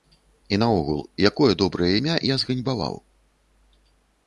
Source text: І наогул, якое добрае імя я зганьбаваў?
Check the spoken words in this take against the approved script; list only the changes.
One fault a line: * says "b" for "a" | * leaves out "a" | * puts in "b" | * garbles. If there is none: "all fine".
all fine